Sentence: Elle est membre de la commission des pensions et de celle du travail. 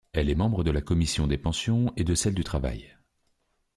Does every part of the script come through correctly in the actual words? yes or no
yes